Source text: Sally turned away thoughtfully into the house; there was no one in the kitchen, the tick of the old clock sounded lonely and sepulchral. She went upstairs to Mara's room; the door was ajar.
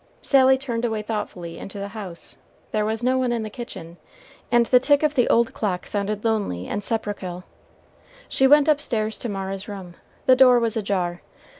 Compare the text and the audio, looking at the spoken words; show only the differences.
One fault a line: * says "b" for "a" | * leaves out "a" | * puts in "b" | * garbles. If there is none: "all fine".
* puts in "and"